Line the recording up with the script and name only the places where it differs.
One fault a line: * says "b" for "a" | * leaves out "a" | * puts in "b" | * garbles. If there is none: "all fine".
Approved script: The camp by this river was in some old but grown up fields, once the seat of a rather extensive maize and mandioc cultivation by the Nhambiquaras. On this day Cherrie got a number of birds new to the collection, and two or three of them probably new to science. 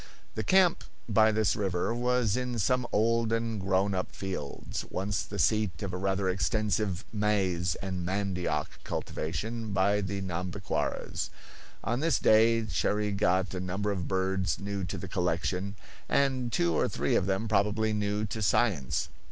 * says "and" for "but"